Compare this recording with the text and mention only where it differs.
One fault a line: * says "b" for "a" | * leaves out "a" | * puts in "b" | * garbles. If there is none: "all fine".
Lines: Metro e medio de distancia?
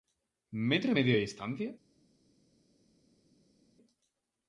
all fine